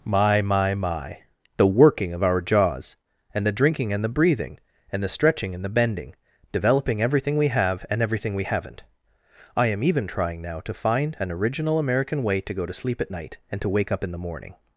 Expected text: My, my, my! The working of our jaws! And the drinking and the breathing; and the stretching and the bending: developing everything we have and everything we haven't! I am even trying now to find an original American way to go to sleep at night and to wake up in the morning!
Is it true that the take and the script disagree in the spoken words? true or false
false